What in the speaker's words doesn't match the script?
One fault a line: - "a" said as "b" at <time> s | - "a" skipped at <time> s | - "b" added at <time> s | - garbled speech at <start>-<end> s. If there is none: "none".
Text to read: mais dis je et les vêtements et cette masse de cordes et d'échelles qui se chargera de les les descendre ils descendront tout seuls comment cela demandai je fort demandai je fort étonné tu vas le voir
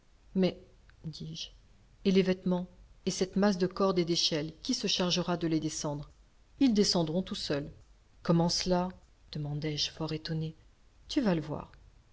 - "les" skipped at 5.6 s
- "demandai je fort" skipped at 10.1 s